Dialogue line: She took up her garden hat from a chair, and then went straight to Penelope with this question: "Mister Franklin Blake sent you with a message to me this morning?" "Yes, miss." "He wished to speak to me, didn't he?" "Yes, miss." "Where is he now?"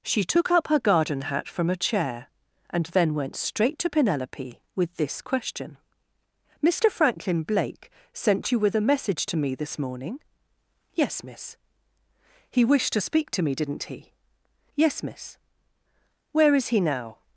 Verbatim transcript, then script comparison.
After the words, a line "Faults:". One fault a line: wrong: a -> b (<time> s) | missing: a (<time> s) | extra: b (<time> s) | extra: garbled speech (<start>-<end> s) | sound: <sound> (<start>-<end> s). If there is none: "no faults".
She took up her garden hat from a chair, and then went straight to Penelope with this question: "Mister Franklin Blake sent you with a message to me this morning?" "Yes, miss." "He wished to speak to me, didn't he?" "Yes, miss." "Where is he now?"
Faults:
no faults